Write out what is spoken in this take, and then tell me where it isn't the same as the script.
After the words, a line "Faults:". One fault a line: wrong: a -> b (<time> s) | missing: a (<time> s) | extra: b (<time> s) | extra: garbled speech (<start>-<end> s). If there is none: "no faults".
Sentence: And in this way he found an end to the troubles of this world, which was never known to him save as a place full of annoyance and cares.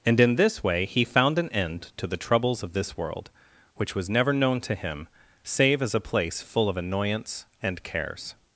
And in this way he found an end to the troubles of this world, which was never known to him save as a place full of annoyance and cares.
Faults:
no faults